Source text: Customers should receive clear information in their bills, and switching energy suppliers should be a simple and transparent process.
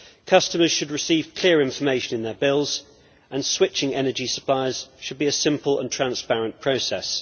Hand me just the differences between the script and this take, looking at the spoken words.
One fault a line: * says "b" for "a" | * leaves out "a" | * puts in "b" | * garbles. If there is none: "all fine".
all fine